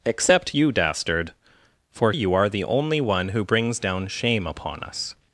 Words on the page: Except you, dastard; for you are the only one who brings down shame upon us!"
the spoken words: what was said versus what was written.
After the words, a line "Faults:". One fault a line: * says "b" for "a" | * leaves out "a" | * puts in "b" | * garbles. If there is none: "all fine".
Except you, dastard; for you are the only one who brings down shame upon us!"
Faults:
all fine